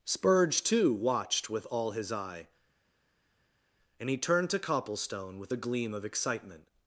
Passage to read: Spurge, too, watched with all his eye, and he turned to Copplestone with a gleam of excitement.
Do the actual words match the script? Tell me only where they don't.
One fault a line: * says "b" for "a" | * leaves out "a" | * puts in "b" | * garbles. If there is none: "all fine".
all fine